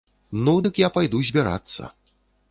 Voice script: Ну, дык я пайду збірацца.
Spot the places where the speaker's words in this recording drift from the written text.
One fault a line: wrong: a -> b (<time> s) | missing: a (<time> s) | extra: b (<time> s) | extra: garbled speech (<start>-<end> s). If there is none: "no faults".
no faults